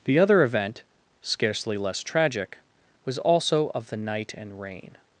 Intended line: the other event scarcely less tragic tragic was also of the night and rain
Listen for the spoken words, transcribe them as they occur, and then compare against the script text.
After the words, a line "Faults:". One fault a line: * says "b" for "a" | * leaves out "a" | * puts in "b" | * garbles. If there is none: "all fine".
the other event scarcely less tragic was also of the night and rain
Faults:
* leaves out "tragic"